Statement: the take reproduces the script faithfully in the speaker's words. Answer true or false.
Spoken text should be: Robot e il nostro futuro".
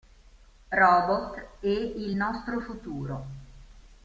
true